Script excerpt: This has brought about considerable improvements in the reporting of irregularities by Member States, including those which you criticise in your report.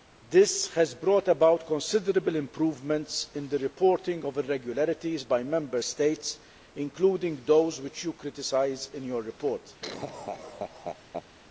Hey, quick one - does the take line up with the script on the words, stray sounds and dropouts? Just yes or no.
no